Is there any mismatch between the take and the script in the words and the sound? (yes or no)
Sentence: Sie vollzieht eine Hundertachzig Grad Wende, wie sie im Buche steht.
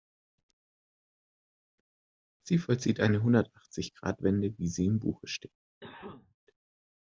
yes